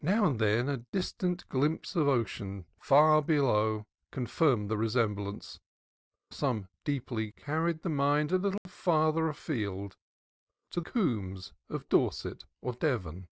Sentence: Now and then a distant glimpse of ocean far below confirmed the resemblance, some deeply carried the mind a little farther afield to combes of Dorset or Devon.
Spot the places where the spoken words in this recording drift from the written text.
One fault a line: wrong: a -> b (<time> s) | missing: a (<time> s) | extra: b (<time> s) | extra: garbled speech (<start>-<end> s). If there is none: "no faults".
no faults